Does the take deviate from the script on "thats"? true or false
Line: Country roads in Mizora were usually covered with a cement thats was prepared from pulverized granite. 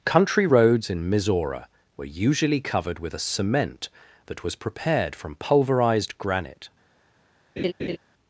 true